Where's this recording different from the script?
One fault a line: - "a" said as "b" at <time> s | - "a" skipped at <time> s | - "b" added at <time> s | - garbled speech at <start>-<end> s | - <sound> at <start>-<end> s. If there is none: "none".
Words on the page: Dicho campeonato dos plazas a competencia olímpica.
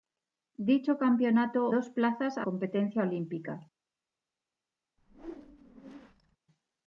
- whoosh at 5.0-6.4 s